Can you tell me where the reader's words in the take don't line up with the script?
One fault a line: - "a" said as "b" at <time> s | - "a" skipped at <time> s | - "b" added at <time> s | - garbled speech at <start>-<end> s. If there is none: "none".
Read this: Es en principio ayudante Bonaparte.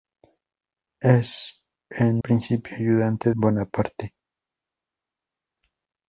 none